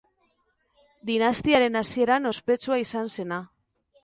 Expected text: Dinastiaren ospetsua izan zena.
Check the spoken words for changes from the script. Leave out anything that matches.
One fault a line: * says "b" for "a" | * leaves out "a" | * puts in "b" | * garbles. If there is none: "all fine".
* puts in "hasieran"